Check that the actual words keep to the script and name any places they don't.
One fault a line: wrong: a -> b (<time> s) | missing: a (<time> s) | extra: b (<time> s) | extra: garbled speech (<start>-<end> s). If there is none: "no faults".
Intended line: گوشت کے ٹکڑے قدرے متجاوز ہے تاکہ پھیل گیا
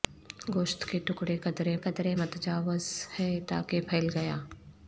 extra: قدرے (1.8 s)